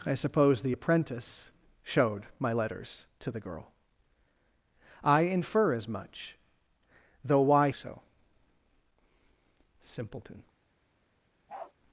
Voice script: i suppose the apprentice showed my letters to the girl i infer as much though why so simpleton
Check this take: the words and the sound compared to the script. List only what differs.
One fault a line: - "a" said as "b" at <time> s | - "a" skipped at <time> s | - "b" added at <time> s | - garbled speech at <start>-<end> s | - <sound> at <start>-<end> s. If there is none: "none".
- bark at 11.5-11.7 s